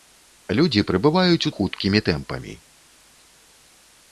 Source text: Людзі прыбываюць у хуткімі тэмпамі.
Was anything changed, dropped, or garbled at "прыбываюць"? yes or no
no